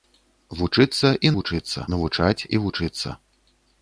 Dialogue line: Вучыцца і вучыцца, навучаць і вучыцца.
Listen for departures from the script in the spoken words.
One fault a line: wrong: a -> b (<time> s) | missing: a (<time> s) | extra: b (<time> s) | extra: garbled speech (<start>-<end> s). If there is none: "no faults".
no faults